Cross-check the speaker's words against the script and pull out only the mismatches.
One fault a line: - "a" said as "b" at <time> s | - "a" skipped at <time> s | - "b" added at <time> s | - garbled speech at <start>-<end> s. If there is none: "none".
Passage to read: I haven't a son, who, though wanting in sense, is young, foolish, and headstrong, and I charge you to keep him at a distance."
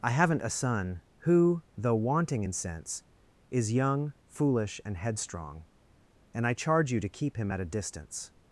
none